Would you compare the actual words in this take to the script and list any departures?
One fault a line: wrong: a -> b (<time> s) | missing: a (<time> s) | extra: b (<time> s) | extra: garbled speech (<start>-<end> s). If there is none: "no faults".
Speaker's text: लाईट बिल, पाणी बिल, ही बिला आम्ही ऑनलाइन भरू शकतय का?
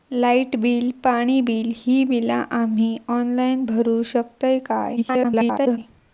extra: garbled speech (5.0-5.8 s)